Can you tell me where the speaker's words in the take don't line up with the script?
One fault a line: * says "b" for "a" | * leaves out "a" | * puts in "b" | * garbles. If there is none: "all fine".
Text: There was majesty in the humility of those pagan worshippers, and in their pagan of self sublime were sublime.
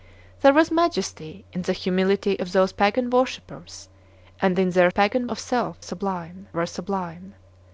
all fine